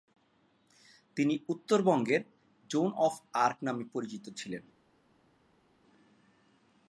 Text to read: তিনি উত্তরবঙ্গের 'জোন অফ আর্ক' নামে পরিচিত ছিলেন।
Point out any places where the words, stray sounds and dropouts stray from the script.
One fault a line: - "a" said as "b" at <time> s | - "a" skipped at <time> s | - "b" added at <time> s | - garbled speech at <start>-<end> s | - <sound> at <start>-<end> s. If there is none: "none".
none